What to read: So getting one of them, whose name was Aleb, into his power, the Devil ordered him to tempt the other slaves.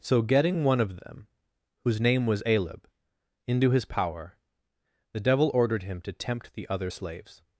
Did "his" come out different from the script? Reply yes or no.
no